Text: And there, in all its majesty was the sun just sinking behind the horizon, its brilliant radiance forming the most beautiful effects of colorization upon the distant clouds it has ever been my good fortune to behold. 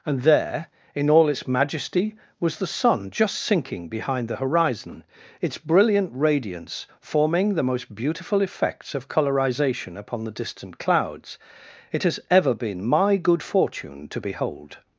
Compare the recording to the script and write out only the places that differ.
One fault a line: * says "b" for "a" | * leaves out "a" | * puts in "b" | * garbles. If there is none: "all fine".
all fine